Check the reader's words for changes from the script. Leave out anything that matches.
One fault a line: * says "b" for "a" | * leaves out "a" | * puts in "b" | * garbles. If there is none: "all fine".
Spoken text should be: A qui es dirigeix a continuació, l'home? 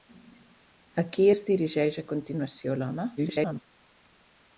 * garbles